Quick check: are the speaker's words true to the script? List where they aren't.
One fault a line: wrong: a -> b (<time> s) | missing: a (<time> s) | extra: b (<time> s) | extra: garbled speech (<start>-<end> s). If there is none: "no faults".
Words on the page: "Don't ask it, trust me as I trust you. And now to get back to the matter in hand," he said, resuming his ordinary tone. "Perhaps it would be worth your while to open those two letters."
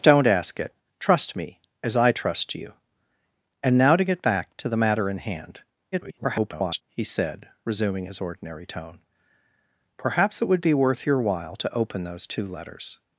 extra: garbled speech (5.9-6.8 s)